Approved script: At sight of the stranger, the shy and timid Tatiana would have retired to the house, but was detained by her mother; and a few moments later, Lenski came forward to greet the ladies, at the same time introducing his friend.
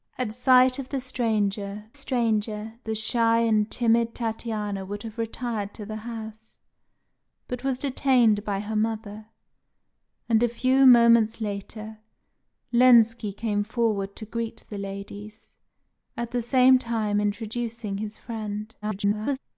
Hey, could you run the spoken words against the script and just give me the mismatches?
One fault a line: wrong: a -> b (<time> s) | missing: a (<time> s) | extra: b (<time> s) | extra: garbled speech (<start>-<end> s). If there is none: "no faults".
extra: stranger (1.9 s)
extra: garbled speech (18.8-19.4 s)